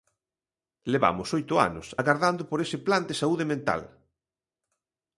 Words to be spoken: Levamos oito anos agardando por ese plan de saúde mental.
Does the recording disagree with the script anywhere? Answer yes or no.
no